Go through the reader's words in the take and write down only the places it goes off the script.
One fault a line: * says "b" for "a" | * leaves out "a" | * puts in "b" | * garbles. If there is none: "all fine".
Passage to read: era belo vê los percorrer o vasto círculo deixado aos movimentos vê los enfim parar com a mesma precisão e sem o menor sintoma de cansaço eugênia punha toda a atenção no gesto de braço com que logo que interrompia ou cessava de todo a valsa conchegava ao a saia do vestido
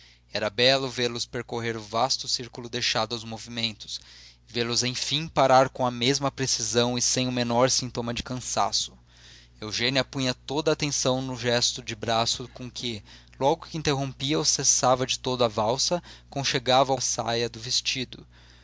all fine